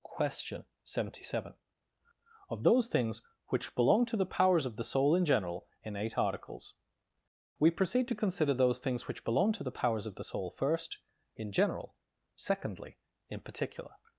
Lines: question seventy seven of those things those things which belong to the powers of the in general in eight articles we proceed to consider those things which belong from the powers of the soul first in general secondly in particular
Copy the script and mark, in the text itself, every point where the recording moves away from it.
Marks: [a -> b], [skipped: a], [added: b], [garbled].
question seventy seven of those things [skipped: those things] which belong to the powers of the [added: soul] in general in eight articles we proceed to consider those things which belong [from -> to] the powers of the soul first in general secondly in particular